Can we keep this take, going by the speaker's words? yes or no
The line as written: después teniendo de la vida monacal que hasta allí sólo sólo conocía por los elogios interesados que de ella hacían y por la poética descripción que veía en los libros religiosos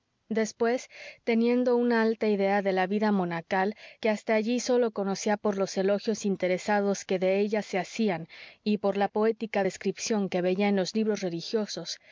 no